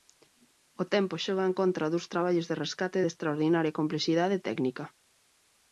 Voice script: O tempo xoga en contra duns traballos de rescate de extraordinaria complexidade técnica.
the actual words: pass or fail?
pass